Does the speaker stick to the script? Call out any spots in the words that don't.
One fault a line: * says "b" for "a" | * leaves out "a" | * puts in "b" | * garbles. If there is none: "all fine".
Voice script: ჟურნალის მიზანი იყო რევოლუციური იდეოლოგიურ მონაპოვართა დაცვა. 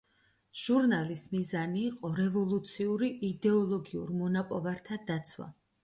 all fine